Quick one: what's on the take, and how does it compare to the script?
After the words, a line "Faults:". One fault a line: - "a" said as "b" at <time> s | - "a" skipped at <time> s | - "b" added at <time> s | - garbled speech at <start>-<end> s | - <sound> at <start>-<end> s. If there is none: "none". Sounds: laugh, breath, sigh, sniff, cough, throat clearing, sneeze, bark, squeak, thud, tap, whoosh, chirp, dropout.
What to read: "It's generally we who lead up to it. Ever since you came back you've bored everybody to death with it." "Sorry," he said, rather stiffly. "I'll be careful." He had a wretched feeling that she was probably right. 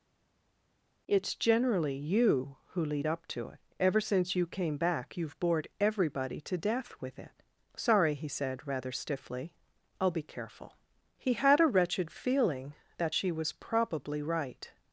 "It's generally you who lead up to it. Ever since you came back you've bored everybody to death with it." "Sorry," he said, rather stiffly. "I'll be careful." He had a wretched feeling that she was probably right.
Faults:
- "we" said as "you" at 2.0 s